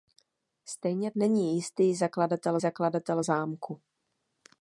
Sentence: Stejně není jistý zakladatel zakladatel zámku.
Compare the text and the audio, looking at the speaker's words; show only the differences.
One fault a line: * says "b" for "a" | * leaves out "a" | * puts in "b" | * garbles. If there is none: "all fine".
all fine